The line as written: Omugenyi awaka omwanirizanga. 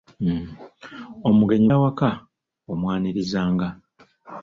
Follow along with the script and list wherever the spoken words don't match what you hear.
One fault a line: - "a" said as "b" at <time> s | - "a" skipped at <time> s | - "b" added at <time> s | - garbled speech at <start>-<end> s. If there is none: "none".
none